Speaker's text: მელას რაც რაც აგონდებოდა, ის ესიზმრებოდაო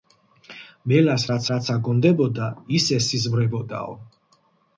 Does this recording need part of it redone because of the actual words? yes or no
no